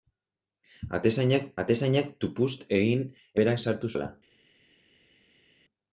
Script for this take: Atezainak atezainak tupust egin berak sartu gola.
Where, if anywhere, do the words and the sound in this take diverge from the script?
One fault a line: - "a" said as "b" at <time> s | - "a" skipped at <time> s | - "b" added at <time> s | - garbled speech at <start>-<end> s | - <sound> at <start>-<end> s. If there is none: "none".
none